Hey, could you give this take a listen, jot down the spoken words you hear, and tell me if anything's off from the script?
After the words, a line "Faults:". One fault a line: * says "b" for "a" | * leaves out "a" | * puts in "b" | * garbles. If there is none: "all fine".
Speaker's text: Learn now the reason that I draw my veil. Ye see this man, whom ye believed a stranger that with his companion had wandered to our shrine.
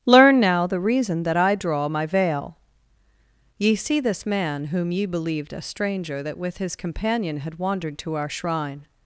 Learn now the reason that I draw my veil. Ye see this man, whom ye believed a stranger that with his companion had wandered to our shrine.
Faults:
all fine